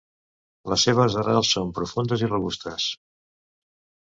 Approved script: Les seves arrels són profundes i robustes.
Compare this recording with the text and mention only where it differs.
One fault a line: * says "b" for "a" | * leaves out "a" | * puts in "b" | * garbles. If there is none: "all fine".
all fine